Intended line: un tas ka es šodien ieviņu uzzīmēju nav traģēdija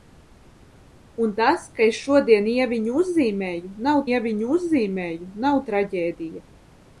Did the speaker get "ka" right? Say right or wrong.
right